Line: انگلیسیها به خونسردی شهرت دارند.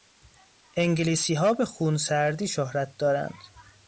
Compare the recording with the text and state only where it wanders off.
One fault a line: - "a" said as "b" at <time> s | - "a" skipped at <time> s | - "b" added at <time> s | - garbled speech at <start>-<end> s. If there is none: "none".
none